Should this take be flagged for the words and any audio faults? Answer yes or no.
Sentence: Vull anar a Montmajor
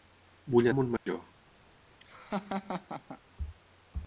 yes